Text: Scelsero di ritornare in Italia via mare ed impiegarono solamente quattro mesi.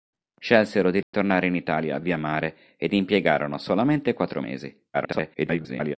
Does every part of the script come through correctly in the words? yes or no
no